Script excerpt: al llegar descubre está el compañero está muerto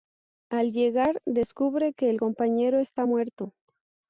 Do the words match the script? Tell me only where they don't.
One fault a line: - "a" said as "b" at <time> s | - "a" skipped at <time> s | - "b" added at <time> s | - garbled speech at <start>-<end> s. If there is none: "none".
- "está" said as "que" at 1.9 s